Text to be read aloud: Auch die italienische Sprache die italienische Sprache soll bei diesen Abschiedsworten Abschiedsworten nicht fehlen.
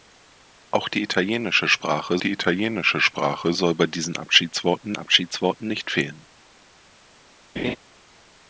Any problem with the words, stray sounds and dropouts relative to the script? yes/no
yes